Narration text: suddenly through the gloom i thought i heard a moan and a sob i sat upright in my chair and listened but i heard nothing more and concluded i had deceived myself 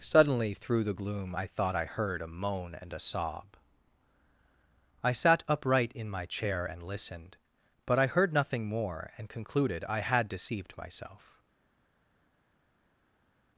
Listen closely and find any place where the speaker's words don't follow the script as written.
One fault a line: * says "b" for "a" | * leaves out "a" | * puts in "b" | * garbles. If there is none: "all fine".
all fine